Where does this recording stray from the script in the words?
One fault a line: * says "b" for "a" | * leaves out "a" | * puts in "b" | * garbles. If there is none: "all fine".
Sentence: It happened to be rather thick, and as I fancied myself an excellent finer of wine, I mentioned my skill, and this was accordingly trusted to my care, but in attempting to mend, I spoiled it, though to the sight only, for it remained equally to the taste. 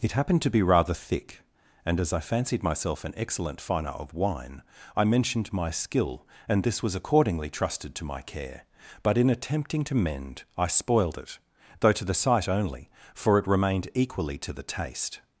all fine